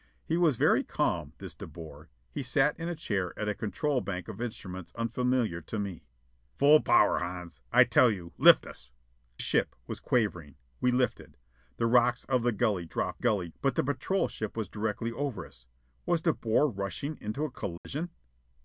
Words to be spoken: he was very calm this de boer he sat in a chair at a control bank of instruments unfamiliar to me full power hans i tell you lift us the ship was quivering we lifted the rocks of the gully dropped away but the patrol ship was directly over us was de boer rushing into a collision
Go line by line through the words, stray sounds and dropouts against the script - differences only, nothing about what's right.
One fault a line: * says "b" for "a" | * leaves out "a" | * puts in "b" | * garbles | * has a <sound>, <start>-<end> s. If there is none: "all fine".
* leaves out "the"
* says "gully" for "away"
* has a dropout, 17.8-17.8 s